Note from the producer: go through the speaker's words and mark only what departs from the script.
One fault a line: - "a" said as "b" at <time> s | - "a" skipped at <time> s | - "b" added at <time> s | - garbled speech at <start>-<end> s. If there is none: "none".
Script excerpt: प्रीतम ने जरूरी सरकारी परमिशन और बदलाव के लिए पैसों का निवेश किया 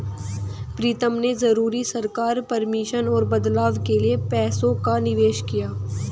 none